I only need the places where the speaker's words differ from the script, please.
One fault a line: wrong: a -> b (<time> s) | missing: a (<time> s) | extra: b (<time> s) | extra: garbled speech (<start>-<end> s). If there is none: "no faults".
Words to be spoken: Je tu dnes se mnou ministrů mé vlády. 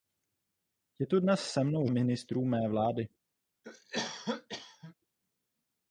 no faults